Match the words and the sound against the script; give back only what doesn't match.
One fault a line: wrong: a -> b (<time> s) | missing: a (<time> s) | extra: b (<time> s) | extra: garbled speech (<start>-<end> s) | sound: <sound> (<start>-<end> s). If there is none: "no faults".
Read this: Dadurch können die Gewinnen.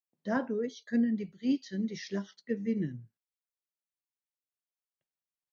extra: Briten die Schlacht (1.3 s)